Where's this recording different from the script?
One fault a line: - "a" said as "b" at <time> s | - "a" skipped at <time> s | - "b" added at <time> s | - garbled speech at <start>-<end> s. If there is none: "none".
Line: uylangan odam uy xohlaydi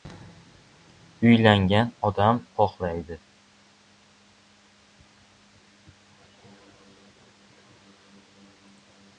- "uy" skipped at 2.4 s